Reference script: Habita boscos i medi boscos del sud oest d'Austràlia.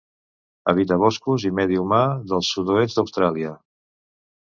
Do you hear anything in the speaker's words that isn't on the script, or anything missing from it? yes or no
yes